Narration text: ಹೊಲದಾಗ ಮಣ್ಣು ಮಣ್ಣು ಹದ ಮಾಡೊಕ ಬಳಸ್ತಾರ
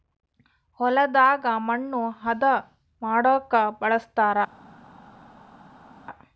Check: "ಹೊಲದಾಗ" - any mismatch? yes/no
no